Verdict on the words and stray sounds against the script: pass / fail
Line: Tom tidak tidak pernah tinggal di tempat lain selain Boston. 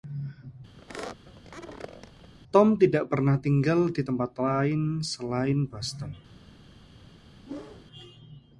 fail